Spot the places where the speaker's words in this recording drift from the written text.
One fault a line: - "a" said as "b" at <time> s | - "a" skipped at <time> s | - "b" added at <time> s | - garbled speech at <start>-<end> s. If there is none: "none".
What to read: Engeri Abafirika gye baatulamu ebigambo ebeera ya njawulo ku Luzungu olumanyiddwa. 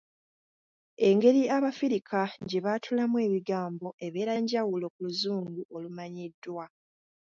- "ya" skipped at 4.3 s